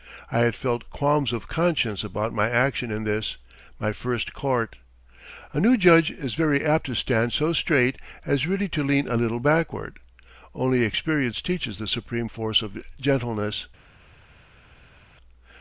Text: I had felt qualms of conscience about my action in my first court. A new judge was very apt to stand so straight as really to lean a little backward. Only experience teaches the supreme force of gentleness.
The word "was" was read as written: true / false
false